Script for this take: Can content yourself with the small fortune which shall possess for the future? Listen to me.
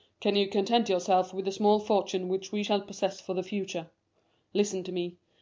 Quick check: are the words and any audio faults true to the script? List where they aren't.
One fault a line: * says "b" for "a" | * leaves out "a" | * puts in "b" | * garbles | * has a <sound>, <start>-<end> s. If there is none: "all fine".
* puts in "you"
* puts in "we"